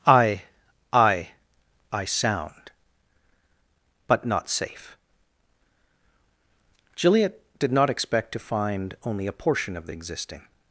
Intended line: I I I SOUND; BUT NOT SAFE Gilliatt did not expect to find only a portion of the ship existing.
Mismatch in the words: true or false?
true